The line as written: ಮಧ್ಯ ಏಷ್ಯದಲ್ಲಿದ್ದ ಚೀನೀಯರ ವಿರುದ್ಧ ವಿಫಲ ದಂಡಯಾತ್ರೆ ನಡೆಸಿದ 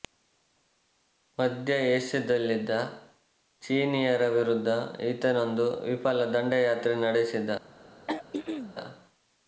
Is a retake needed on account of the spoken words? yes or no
yes